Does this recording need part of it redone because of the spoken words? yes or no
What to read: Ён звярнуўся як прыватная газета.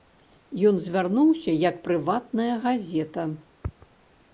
no